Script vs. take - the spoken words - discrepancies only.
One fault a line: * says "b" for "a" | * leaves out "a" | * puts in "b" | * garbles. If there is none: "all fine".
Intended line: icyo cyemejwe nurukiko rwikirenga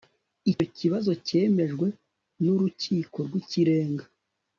* puts in "kibazo"